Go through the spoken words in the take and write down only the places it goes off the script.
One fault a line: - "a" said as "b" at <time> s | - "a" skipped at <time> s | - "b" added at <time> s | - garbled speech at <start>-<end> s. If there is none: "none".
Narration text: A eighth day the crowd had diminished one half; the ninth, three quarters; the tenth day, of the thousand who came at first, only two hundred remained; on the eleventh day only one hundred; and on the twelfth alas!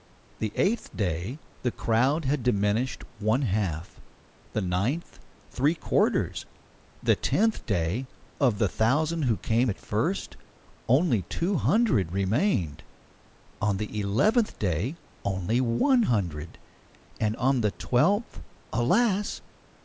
- "A" said as "The" at 0.4 s